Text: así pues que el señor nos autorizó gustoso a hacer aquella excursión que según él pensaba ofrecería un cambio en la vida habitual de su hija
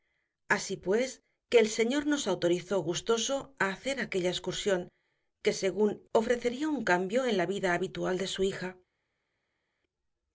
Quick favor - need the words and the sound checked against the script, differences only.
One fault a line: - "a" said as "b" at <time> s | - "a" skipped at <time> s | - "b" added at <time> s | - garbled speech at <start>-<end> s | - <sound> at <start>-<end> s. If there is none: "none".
- "él pensaba" skipped at 6.0 s